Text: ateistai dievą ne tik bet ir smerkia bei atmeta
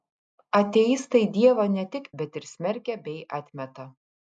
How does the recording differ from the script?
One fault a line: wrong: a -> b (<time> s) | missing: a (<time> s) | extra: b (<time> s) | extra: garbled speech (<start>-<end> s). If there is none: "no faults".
no faults